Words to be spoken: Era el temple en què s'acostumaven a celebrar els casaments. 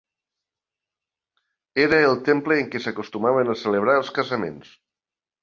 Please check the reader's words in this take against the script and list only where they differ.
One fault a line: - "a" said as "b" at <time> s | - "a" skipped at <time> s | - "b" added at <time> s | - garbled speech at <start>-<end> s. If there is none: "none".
none